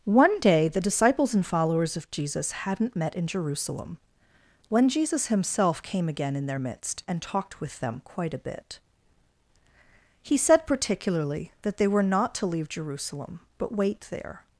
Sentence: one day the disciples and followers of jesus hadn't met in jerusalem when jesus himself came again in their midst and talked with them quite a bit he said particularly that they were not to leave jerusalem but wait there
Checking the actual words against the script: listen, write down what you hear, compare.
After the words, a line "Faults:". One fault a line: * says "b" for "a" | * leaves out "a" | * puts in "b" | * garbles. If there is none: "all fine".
one day the disciples and followers of jesus hadn't met in jerusalem when jesus himself came again in their midst and talked with them quite a bit he said particularly that they were not to leave jerusalem but wait there
Faults:
all fine